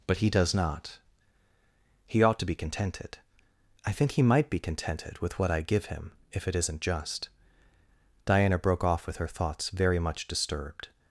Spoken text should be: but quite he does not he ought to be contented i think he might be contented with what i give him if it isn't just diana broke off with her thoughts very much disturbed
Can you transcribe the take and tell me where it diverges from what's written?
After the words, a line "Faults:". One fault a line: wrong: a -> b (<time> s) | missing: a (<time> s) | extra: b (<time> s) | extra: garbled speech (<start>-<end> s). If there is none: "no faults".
but he does not he ought to be contented i think he might be contented with what i give him if it isn't just diana broke off with her thoughts very much disturbed
Faults:
missing: quite (0.2 s)